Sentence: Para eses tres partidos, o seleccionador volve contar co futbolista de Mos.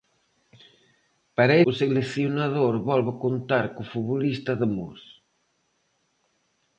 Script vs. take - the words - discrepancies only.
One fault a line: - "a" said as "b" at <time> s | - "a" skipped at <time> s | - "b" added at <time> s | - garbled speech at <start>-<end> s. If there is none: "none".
- "eses tres partidos" skipped at 1.6 s